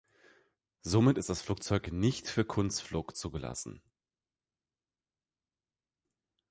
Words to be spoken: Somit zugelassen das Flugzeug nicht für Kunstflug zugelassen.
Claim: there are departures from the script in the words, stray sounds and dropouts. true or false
true